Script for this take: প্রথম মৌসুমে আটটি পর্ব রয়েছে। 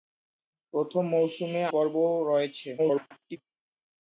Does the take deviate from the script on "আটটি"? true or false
true